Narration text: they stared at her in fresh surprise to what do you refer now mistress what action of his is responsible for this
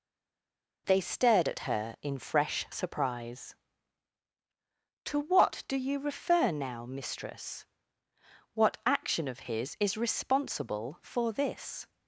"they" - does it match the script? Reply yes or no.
yes